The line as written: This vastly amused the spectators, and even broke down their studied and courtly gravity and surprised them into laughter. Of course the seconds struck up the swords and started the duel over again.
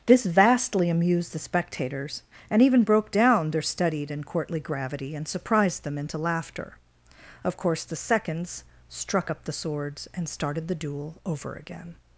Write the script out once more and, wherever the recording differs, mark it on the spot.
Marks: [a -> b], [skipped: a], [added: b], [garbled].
This vastly amused the spectators, and even broke down their studied and courtly gravity and surprised them into laughter. Of course the seconds struck up the swords and started the duel over again.